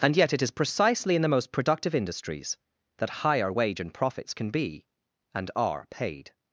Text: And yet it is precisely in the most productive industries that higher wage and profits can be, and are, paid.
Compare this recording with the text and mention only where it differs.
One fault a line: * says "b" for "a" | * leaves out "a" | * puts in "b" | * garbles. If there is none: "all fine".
all fine